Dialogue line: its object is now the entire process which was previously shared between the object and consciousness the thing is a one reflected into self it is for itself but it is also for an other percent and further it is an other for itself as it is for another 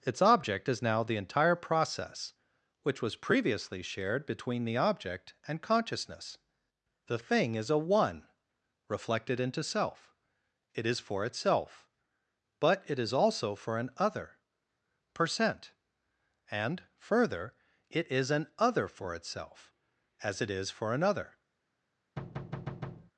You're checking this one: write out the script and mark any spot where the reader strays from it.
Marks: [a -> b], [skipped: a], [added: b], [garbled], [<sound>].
its object is now the entire process which was previously shared between the object and consciousness the thing is a one reflected into self it is for itself but it is also for an other percent and further it is an other for itself as it is for another [thud]